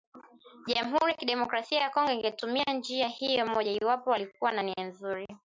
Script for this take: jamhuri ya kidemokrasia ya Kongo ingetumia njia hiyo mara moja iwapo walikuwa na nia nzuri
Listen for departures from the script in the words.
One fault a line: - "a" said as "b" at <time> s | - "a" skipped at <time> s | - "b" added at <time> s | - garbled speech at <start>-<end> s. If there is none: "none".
- "mara" skipped at 3.5 s